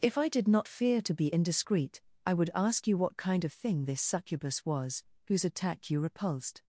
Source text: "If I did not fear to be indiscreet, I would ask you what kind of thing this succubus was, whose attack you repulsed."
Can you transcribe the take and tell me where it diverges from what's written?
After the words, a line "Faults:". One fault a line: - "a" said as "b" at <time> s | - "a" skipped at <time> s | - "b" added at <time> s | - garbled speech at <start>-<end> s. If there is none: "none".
"If I did not fear to be indiscreet, I would ask you what kind of thing this succubus was, whose attack you repulsed."
Faults:
none